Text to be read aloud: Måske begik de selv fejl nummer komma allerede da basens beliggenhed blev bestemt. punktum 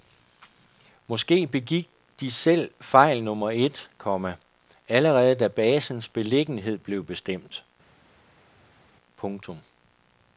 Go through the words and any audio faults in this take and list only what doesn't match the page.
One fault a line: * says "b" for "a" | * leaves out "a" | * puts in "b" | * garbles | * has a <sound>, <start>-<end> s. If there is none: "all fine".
* puts in "et"